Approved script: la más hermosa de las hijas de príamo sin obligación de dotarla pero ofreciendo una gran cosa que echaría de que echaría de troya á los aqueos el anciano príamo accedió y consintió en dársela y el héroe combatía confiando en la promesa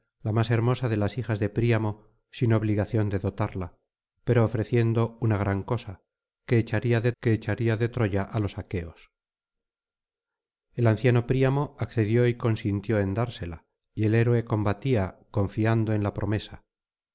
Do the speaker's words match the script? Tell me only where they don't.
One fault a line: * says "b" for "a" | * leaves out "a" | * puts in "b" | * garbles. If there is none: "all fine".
all fine